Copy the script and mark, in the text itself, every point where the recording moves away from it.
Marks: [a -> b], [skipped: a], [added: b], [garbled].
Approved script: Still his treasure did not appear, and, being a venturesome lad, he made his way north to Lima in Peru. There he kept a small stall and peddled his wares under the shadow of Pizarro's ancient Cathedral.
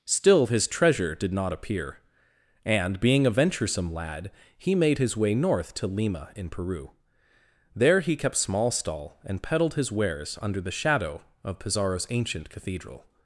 Still his treasure did not appear, and, being a venturesome lad, he made his way north to Lima in Peru. There he kept [skipped: a] small stall and peddled his wares under the shadow of Pizarro's ancient Cathedral.